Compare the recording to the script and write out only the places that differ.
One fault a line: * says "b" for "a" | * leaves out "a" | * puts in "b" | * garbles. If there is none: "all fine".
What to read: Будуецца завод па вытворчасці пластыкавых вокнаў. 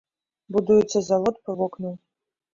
* leaves out "вытворчасці пластыкавых"